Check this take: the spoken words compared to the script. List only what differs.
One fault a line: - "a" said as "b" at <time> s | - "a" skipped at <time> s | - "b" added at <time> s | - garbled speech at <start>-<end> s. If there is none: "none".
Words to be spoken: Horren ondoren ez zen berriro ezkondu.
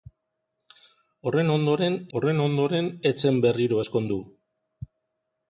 - "horren ondoren" added at 2.2 s